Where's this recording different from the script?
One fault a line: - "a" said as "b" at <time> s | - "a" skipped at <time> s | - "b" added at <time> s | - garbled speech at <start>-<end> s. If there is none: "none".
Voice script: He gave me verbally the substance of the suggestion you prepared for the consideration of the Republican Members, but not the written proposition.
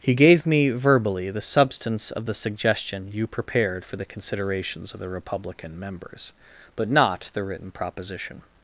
- "consideration" said as "considerations" at 4.1 s